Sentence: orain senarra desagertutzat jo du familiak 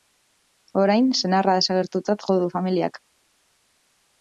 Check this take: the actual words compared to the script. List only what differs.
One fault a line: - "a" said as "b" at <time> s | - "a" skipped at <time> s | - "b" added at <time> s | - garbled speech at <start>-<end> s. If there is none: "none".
none